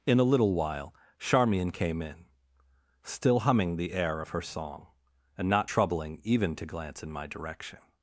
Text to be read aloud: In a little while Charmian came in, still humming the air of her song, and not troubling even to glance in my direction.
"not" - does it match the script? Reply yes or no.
yes